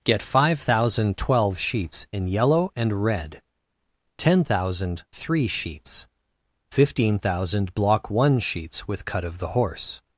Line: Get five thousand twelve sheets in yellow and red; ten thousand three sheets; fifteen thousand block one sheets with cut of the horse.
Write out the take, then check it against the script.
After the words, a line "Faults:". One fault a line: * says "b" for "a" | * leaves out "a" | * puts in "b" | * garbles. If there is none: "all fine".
Get five thousand twelve sheets in yellow and red; ten thousand three sheets; fifteen thousand block one sheets with cut of the horse.
Faults:
all fine